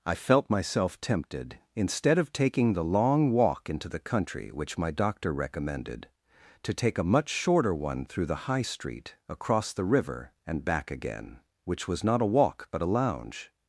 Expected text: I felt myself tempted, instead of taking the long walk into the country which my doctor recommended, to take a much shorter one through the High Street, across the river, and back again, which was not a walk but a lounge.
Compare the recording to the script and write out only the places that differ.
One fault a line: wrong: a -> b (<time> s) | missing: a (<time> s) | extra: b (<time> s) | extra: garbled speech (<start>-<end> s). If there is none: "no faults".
no faults